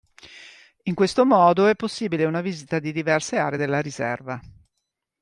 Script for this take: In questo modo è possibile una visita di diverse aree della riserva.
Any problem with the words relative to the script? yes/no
no